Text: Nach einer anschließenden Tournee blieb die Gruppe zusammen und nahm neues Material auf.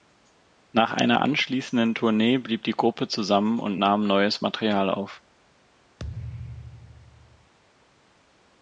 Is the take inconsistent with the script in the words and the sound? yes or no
yes